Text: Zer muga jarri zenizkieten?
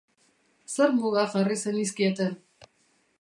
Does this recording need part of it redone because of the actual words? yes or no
no